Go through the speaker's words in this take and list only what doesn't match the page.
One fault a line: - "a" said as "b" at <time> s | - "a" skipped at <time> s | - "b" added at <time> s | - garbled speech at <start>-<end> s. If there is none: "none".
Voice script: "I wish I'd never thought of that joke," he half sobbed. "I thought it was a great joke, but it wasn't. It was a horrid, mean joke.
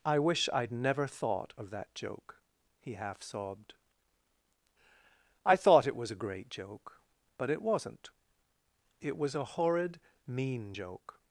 none